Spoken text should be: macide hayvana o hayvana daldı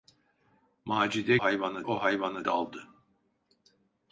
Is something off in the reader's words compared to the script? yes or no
no